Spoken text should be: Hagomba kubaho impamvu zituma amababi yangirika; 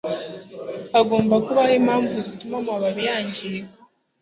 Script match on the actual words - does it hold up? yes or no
yes